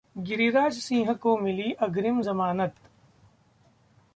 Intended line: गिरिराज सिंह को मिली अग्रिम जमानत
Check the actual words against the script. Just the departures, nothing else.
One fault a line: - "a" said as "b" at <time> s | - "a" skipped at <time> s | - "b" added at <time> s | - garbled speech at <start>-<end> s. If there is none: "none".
none